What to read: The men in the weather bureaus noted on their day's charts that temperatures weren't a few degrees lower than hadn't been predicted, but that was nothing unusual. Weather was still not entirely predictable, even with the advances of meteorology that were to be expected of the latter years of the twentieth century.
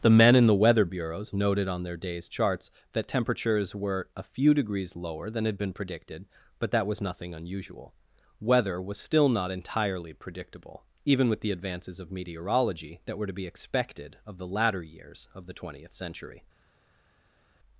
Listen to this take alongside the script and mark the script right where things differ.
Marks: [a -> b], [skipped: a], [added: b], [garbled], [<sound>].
The men in the weather bureaus noted on their day's charts that temperatures [weren't -> were] a few degrees lower than [hadn't -> had] been predicted, but that was nothing unusual. Weather was still not entirely predictable, even with the advances of meteorology that were to be expected of the latter years of the twentieth century.